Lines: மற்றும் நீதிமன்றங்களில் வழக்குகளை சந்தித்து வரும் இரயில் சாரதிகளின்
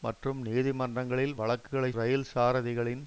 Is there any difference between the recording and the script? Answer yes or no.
yes